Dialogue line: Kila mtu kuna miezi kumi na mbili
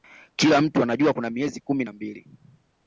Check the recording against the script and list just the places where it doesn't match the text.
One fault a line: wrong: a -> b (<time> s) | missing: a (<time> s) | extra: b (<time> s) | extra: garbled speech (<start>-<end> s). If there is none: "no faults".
extra: anajua (0.8 s)